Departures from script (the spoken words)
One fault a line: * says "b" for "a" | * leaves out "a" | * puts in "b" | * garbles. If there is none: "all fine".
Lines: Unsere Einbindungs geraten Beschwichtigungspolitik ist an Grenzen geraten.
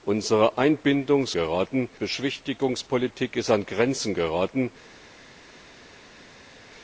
all fine